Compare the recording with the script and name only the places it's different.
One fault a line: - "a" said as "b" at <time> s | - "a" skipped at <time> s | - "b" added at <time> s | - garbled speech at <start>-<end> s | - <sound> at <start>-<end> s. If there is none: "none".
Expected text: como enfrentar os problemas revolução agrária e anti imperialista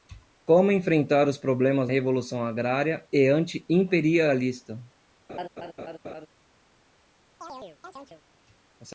- laugh at 5.3-6.3 s
- chirp at 7.4-8.2 s